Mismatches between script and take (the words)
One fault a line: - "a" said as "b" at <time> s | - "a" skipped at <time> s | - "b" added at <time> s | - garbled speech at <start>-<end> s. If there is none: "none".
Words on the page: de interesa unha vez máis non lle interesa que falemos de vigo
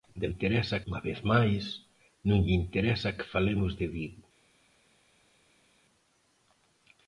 none